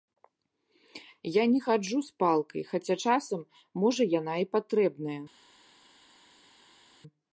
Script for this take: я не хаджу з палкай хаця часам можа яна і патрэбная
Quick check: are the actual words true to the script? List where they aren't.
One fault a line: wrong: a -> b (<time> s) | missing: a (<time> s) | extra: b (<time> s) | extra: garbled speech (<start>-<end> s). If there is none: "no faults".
no faults